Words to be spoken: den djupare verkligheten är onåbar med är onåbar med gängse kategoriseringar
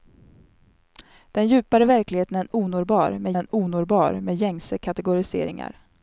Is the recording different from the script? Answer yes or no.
no